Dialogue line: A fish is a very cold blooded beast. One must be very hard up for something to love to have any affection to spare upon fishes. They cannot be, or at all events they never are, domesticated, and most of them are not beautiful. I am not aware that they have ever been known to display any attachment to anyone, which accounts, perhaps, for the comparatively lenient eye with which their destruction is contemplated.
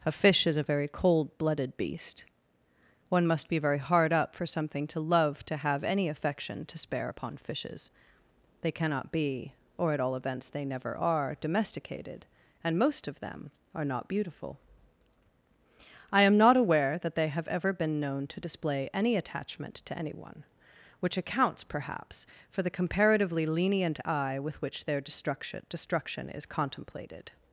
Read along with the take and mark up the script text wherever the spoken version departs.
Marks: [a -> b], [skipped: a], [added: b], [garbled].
A fish is a very cold blooded beast. One must be very hard up for something to love to have any affection to spare upon fishes. They cannot be, or at all events they never are, domesticated, and most of them are not beautiful. I am not aware that they have ever been known to display any attachment to anyone, which accounts, perhaps, for the comparatively lenient eye with which their destruction [added: destruction] is contemplated.